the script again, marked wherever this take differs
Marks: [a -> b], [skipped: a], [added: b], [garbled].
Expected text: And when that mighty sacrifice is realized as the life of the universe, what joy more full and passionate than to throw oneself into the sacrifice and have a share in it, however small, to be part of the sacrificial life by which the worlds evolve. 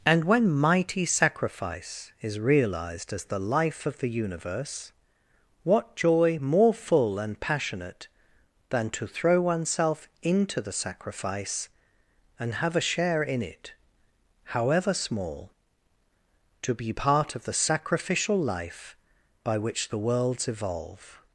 And when [skipped: that] mighty sacrifice is realized as the life of the universe, what joy more full and passionate than to throw oneself into the sacrifice and have a share in it, however small, to be part of the sacrificial life by which the worlds evolve.